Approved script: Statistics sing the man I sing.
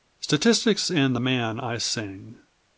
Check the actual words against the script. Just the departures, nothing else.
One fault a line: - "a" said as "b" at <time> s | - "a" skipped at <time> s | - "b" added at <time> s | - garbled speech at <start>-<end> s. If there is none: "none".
- "sing" said as "and" at 0.9 s